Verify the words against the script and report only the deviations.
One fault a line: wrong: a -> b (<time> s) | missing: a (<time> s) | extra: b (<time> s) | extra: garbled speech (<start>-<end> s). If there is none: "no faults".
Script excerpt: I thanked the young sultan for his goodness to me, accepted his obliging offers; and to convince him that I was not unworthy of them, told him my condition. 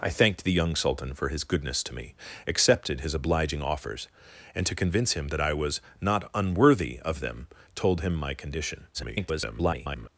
extra: garbled speech (8.9-10.1 s)